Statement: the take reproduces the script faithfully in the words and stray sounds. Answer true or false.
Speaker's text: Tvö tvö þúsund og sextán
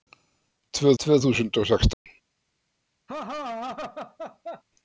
false